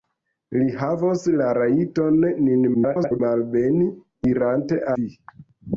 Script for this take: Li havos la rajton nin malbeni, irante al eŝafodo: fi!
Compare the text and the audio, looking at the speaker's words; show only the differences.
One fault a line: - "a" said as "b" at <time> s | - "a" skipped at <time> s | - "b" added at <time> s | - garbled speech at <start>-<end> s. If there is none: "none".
- garbled speech at 2.7-3.2 s
- "al eŝafodo" skipped at 4.8 s